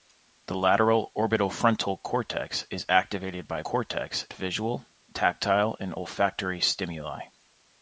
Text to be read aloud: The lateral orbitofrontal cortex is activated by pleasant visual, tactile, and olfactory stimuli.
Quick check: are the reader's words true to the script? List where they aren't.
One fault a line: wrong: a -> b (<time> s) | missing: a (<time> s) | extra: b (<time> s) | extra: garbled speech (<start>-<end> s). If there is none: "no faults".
wrong: pleasant -> cortex (3.6 s)